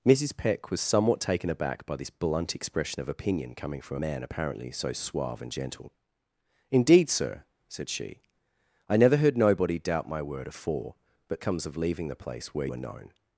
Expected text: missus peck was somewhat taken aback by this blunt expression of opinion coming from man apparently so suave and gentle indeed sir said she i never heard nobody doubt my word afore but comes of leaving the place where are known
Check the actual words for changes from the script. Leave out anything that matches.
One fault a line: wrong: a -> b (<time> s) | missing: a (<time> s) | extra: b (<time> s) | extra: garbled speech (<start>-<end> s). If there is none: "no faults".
no faults